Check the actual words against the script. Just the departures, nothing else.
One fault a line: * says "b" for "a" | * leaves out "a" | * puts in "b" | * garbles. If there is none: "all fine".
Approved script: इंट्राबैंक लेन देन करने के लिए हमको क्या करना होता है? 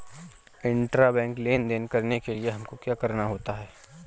all fine